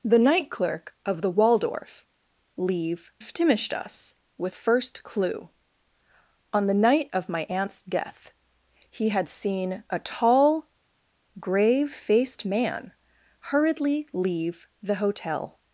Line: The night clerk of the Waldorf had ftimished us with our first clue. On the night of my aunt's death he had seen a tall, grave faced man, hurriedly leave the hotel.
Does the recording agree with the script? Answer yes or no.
no